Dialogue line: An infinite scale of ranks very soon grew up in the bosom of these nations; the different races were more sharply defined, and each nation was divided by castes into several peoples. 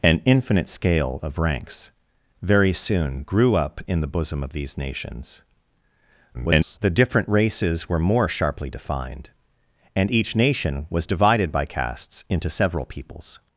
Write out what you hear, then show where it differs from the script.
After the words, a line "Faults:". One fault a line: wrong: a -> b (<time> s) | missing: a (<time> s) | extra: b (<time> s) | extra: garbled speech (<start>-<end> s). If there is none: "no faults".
An infinite scale of ranks very soon grew up in the bosom of these nations; [garbled] the different races were more sharply defined, and each nation was divided by castes into several peoples.
Faults:
extra: garbled speech (6.3-6.8 s)